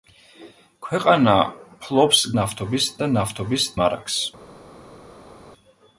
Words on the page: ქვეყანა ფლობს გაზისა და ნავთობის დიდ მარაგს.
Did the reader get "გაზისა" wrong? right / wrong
wrong